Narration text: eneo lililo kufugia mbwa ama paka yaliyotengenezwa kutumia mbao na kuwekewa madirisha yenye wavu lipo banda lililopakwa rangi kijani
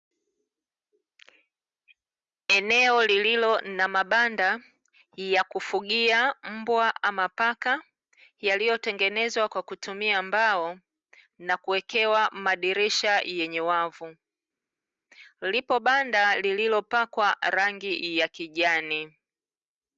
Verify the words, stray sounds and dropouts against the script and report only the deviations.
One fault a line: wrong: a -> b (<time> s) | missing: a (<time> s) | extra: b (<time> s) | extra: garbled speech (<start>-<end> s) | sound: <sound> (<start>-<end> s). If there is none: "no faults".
extra: na mabanda ya (3.6 s)
extra: kwa (9.5 s)
extra: ya (18.2 s)